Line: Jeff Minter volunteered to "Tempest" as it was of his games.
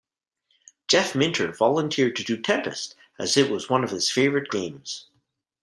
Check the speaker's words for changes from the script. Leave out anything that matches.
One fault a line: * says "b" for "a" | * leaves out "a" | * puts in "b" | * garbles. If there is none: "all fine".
* puts in "do"
* puts in "one"
* puts in "favorite"